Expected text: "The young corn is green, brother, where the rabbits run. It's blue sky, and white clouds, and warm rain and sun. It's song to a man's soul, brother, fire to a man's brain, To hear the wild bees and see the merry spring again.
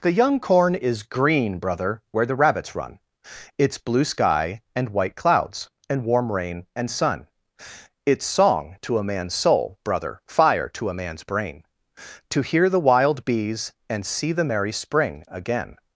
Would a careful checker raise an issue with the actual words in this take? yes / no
no